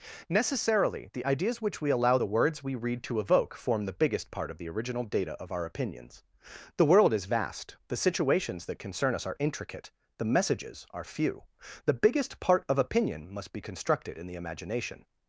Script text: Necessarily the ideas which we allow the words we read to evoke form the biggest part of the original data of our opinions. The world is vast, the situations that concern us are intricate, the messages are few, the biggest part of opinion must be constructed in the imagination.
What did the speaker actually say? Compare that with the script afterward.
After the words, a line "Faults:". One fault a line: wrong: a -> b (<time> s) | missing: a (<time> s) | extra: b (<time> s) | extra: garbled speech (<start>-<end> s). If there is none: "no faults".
Necessarily the ideas which we allow the words we read to evoke form the biggest part of the original data of our opinions. The world is vast, the situations that concern us are intricate, the messages are few, the biggest part of opinion must be constructed in the imagination.
Faults:
no faults